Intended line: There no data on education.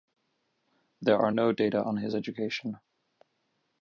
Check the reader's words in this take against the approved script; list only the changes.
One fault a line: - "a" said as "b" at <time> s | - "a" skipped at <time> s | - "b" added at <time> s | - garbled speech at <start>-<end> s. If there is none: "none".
- "are" added at 1.2 s
- "his" added at 2.0 s